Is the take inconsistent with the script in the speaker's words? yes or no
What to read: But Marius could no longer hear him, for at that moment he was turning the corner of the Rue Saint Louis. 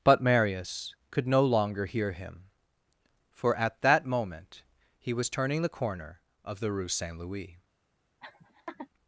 no